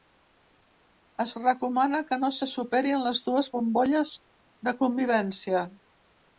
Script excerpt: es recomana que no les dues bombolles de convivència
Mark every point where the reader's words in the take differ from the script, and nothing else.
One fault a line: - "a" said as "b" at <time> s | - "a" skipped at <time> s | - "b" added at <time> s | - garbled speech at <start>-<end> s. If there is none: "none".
- "se superin" added at 2.4 s